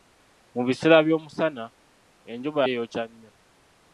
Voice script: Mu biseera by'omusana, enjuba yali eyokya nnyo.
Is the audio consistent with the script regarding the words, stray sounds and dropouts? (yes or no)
no